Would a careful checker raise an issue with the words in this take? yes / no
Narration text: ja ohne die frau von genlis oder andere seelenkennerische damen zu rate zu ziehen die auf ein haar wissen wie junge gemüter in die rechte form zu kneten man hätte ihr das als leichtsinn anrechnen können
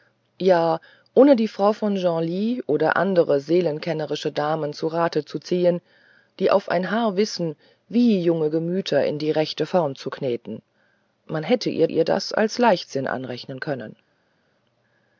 yes